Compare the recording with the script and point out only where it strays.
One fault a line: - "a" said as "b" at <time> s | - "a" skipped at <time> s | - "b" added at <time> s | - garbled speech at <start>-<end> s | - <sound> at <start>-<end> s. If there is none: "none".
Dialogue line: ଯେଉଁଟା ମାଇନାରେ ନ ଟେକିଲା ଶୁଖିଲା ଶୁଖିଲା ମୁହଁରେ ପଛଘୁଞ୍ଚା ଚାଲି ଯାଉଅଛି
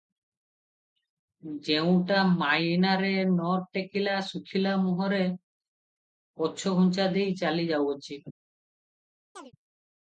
- "ଶୁଖିଲା" skipped at 4.8 s
- "ଦେଇ" added at 7.1 s
- chirp at 9.3-9.5 s